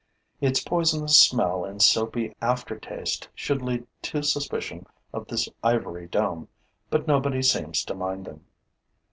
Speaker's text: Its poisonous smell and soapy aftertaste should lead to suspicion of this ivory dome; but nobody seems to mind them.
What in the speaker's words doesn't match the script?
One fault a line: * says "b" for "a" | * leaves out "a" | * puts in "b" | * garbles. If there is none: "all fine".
all fine